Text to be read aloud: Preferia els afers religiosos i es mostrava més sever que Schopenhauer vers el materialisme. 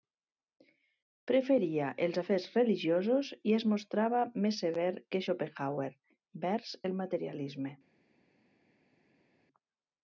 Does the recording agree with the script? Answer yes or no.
yes